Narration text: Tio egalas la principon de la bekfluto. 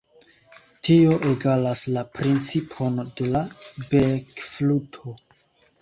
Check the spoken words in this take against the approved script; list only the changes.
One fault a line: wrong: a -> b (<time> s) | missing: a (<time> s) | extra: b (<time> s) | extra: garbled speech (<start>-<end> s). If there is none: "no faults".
no faults